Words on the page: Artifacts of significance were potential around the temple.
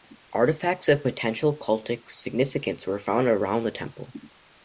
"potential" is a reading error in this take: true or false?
true